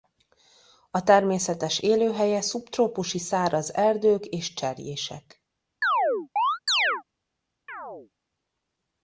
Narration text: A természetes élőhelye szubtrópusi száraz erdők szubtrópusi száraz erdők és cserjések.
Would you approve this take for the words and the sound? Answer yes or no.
no